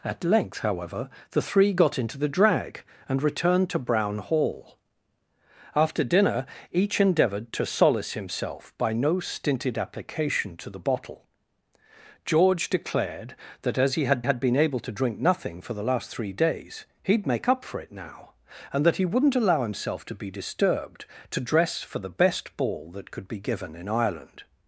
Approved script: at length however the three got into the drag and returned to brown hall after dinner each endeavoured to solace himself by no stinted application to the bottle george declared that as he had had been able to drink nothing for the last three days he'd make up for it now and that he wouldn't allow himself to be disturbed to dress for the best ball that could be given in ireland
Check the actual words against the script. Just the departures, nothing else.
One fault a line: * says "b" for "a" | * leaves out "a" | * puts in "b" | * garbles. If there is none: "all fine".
all fine